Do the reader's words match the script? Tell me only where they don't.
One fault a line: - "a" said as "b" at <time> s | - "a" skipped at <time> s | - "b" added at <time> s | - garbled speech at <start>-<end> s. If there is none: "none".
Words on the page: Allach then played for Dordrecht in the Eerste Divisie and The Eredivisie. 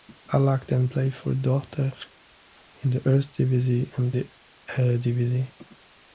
none